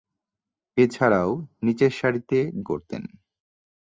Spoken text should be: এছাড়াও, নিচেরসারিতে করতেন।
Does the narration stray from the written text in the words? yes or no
no